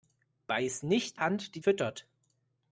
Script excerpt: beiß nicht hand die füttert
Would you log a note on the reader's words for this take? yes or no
no